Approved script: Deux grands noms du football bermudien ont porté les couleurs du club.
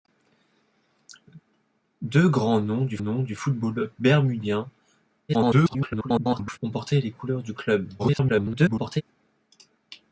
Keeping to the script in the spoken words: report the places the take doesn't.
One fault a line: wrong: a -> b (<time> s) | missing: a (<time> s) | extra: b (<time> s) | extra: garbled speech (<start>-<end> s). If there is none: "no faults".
extra: noms du (3.0 s)
extra: garbled speech (5.3-6.6 s)
extra: garbled speech (8.0-9.0 s)